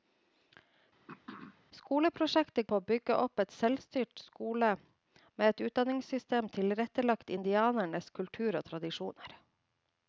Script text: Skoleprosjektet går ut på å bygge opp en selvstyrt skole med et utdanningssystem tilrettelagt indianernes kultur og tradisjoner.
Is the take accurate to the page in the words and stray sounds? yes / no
no